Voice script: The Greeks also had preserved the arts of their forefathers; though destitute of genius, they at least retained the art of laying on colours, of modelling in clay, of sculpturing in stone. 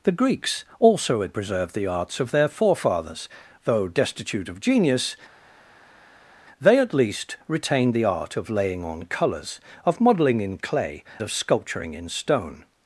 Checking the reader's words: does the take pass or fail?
pass